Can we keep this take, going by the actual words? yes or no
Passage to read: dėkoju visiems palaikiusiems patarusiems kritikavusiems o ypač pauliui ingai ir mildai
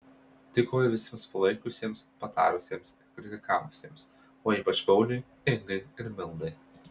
no